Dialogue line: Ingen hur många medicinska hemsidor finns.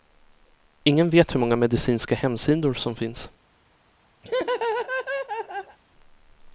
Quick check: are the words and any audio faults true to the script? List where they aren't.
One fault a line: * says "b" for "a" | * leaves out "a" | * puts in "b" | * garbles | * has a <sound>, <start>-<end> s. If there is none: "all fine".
* puts in "vet"
* puts in "som"
* has a laugh, 4.2-5.8 s